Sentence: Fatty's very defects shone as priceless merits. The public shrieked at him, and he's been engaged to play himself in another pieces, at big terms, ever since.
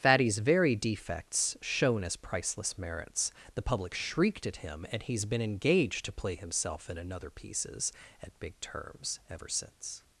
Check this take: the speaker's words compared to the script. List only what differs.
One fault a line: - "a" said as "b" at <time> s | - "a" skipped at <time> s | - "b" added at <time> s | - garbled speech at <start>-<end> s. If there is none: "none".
none